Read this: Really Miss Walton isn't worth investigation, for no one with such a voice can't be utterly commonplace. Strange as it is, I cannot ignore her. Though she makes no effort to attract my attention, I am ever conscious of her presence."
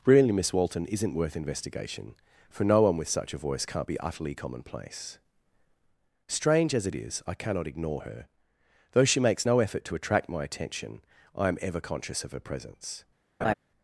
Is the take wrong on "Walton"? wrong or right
right